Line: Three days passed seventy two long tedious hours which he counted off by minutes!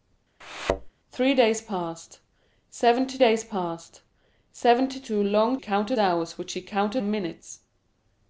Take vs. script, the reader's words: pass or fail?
fail